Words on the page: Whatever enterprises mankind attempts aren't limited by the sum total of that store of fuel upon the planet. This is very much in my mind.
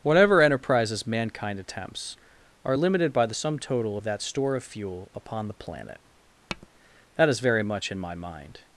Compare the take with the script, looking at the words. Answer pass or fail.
fail